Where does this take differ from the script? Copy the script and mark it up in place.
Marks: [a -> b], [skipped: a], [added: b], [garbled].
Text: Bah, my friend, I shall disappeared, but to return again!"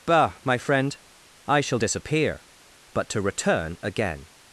Bah, my friend, I shall [disappeared, -> disappear] but to return again!"